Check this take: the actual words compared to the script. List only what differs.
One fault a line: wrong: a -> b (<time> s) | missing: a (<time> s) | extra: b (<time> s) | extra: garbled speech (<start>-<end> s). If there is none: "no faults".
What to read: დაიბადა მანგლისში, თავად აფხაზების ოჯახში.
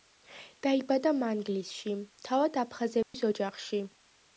no faults